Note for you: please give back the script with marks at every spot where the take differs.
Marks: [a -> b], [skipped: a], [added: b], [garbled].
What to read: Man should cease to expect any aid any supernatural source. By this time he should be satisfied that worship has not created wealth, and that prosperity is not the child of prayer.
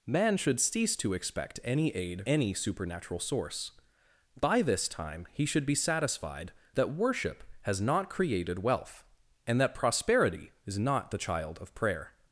Man should cease to expect any aid any supernatural source. By this time he should be satisfied that worship has not created wealth, and that prosperity is not the child of prayer.